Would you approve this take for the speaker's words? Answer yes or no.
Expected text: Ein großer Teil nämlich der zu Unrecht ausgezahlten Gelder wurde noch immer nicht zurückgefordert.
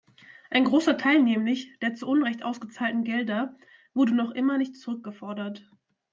yes